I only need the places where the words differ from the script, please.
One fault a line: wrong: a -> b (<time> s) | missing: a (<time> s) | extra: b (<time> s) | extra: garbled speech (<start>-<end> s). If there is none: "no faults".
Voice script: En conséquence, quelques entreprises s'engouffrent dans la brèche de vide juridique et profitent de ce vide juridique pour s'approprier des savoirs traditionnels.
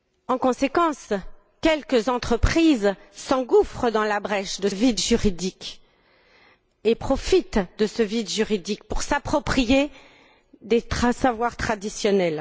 no faults